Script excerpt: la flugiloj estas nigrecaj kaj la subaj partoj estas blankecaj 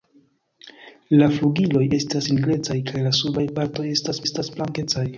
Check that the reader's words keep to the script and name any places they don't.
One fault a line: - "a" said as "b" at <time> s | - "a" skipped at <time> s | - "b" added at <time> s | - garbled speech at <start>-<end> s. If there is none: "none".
- "estas" added at 4.3 s